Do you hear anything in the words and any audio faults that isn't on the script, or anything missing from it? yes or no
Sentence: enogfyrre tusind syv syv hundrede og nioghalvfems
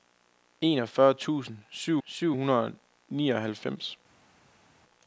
no